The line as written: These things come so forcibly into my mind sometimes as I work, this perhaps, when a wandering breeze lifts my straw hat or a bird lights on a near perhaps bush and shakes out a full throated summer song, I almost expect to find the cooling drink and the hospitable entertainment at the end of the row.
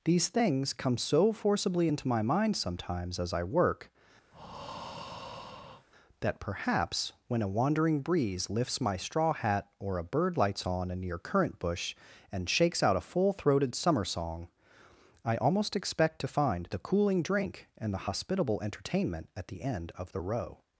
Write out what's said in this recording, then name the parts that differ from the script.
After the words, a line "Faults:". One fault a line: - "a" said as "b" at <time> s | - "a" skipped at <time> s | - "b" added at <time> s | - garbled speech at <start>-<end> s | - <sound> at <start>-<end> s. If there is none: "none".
These things come so forcibly into my mind sometimes as I work, that perhaps, when a wandering breeze lifts my straw hat or a bird lights on a near currant bush and shakes out a full throated summer song, I almost expect to find the cooling drink and the hospitable entertainment at the end of the row.
Faults:
- breath at 4.3-5.9 s
- "this" said as "that" at 6.2 s
- "perhaps" said as "currant" at 11.2 s